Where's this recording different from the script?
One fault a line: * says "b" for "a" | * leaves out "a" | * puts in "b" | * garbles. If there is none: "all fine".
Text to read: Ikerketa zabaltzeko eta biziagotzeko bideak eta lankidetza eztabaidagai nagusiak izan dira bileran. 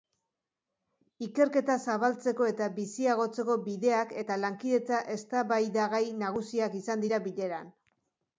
all fine